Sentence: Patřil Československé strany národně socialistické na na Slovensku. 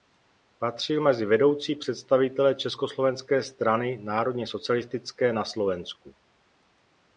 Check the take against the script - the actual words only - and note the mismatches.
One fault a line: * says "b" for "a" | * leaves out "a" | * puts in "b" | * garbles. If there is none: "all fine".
* puts in "mezi vedoucí představitele"
* leaves out "na"